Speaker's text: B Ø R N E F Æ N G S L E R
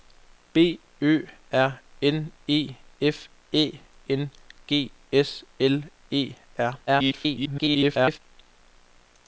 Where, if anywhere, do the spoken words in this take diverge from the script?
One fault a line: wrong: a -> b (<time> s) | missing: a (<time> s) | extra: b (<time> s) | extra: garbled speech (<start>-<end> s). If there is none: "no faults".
extra: garbled speech (6.9-8.2 s)